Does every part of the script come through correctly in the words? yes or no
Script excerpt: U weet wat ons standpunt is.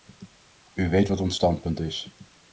yes